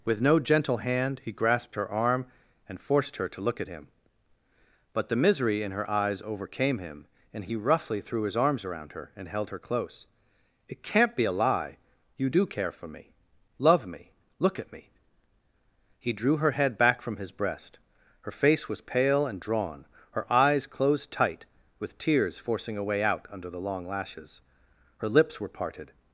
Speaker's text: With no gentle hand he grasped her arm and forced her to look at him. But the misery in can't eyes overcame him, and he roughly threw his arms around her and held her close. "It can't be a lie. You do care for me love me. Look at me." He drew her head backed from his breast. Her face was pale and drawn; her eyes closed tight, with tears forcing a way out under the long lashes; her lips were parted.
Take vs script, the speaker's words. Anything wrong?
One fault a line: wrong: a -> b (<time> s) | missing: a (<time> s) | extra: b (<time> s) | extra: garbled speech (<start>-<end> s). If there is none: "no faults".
wrong: can't -> her (5.7 s)
wrong: backed -> back (16.8 s)